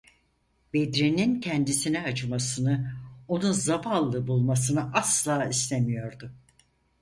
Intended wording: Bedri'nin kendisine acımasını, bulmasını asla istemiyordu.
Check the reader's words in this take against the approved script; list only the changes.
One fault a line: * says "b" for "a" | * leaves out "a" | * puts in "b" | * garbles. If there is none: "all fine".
* puts in "onu zavallı"